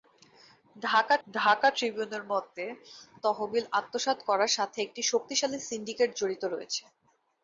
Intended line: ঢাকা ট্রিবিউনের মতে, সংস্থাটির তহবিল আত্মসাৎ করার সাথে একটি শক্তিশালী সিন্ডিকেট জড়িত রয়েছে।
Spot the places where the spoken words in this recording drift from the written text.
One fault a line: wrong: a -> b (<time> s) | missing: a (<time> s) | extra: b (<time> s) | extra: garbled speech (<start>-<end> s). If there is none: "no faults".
extra: ঢাকা (1.3 s)
missing: সংস্থাটির (2.6 s)